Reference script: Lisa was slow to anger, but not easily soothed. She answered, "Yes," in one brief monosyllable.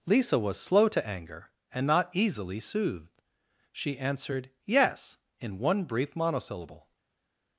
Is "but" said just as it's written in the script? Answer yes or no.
no